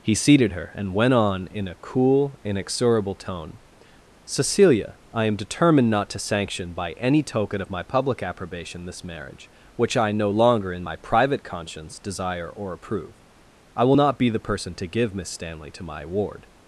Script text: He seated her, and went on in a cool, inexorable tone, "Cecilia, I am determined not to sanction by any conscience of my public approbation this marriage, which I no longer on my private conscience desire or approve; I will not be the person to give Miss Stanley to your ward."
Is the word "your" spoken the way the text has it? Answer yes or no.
no